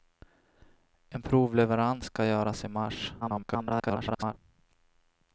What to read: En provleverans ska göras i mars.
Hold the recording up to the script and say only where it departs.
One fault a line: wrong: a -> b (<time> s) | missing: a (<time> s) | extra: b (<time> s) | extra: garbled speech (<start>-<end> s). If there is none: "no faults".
extra: garbled speech (3.2-4.3 s)